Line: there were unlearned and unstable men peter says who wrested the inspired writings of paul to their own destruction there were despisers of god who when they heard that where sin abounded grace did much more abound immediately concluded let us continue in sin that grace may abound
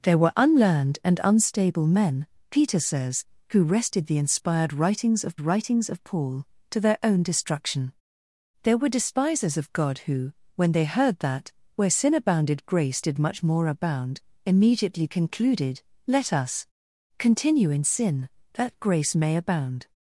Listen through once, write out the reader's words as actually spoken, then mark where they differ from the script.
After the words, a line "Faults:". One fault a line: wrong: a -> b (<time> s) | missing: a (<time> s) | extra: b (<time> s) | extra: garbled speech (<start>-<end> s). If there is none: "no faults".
there were unlearned and unstable men peter says who wrested the inspired writings of writings of paul to their own destruction there were despisers of god who when they heard that where sin abounded grace did much more abound immediately concluded let us continue in sin that grace may abound
Faults:
extra: writings of (5.4 s)